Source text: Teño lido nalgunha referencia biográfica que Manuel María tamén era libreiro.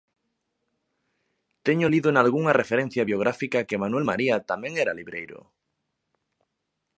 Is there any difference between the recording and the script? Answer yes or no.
no